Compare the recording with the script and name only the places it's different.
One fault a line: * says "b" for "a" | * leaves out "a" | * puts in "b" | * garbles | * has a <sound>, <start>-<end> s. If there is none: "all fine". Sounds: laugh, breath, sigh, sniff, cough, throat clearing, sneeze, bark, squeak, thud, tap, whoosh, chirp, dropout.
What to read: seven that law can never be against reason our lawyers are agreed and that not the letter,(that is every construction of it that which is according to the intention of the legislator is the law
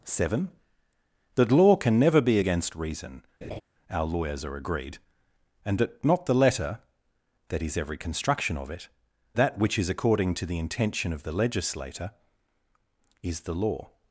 * has a laugh, 3.4-3.6 s